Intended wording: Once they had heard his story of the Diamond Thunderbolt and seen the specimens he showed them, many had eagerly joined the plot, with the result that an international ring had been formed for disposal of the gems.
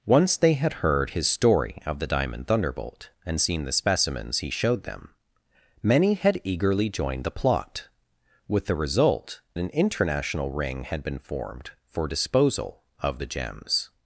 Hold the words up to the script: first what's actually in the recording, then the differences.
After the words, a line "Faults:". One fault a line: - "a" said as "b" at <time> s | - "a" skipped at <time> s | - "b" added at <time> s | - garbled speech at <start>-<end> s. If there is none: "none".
Once they had heard his story of the Diamond Thunderbolt and seen the specimens he showed them, many had eagerly joined the plot, with the result an international ring had been formed for disposal of the gems.
Faults:
- "that" skipped at 9.4 s